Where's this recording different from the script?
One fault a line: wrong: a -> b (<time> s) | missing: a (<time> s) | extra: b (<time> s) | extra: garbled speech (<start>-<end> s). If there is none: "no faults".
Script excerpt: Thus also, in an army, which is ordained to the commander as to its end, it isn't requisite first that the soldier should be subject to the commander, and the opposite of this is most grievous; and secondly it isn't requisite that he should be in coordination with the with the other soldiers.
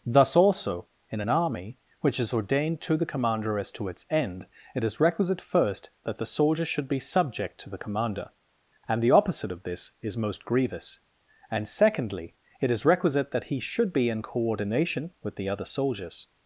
wrong: isn't -> is (4.8 s)
wrong: isn't -> is (12.7 s)
missing: with the (15.5 s)